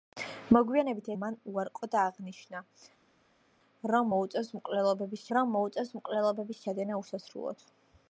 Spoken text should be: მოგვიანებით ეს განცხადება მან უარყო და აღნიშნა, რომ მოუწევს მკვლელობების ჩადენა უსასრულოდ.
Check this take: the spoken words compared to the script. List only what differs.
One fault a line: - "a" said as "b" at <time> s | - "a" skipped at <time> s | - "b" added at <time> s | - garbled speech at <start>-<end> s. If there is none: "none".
- "ეს განცხადება" skipped at 1.1 s
- "რომ მოუწევს მკვლელობების" added at 5.4 s